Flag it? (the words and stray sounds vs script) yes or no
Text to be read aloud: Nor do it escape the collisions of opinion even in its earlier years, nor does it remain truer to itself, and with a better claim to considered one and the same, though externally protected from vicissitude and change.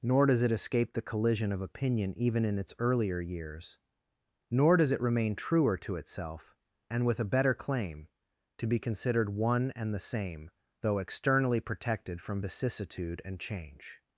yes